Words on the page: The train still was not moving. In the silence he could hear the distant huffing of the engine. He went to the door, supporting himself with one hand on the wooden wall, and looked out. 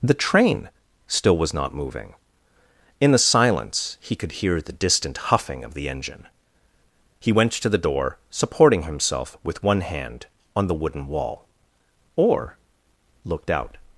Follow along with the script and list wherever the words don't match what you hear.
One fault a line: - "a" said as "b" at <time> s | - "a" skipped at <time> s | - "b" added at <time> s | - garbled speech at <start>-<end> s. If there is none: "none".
- "and" said as "or" at 12.1 s